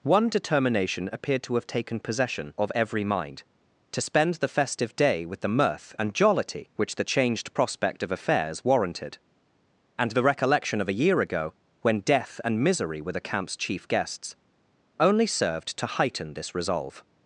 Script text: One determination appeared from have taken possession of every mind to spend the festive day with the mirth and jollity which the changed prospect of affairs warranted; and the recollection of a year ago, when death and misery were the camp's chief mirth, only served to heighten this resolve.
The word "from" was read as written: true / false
false